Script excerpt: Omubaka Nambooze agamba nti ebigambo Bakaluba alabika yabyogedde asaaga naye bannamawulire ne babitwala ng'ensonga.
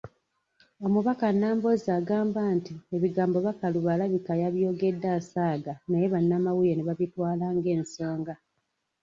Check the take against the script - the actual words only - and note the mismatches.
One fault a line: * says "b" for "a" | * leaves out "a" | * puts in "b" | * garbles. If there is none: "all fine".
all fine